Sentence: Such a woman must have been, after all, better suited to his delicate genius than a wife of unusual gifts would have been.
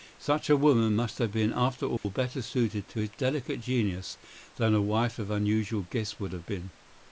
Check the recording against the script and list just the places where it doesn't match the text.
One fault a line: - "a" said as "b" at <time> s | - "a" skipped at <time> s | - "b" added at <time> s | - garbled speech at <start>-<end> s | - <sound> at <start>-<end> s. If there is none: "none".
- dropout at 2.0-2.0 s